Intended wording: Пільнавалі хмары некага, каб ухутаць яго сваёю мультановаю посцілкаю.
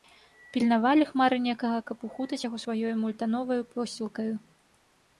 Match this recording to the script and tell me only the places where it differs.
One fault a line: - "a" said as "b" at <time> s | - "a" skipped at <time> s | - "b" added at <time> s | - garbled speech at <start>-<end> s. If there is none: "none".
none